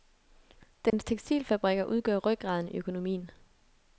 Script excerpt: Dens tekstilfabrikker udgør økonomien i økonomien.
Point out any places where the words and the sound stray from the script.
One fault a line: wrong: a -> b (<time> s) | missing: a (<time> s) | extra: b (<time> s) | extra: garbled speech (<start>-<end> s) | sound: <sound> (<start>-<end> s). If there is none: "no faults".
sound: dropout (0.9-0.9 s)
wrong: økonomien -> rygraden (2.2 s)